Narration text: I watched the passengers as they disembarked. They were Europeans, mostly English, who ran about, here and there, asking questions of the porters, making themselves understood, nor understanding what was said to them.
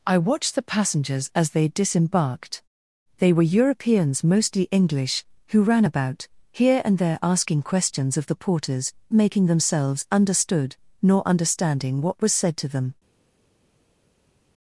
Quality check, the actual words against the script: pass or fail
pass